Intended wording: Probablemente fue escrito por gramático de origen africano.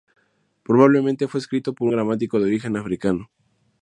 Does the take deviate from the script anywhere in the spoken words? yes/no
no